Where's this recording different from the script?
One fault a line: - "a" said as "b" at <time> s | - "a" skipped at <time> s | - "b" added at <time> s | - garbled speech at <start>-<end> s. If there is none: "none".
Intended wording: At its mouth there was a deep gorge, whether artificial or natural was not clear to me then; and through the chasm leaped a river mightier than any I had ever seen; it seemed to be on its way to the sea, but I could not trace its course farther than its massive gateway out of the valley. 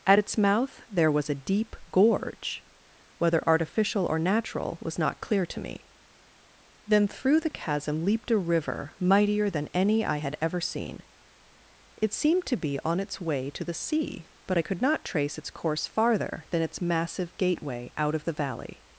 - "and" skipped at 7.1 s